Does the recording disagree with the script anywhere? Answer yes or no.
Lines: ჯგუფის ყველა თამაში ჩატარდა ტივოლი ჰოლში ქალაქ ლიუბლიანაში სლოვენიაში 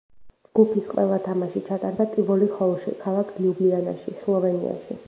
no